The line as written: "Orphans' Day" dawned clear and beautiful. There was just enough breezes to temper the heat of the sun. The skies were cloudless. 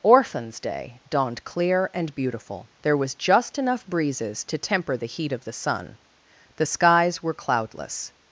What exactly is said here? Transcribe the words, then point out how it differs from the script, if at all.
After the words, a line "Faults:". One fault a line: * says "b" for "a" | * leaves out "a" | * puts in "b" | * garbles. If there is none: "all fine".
"Orphans' Day" dawned clear and beautiful. There was just enough breezes to temper the heat of the sun. The skies were cloudless.
Faults:
all fine